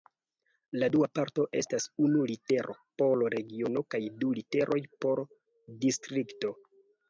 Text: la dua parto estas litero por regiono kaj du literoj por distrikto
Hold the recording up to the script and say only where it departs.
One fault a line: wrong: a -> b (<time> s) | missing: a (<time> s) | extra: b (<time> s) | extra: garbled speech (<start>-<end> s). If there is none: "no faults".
extra: unu (2.0 s)